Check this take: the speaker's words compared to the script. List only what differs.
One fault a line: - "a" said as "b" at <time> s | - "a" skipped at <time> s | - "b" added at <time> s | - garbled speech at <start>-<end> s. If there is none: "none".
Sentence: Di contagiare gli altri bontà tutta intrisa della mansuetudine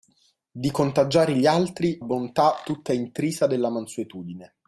none